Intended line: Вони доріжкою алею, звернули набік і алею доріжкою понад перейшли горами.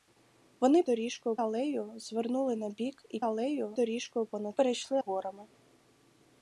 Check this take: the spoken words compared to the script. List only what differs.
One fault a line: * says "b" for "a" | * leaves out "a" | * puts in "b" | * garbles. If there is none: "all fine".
all fine